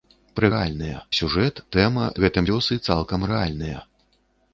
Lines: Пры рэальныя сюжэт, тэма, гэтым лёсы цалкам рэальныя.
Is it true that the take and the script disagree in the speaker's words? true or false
false